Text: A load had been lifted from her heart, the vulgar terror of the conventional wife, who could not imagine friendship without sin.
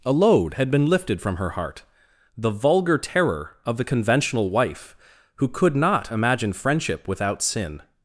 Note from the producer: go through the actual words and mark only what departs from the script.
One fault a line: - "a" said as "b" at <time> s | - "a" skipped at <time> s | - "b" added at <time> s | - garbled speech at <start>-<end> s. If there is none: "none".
none